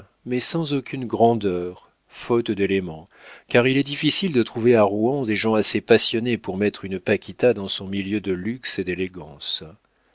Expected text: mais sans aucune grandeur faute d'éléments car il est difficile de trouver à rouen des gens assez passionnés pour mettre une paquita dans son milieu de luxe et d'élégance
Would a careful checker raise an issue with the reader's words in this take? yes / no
no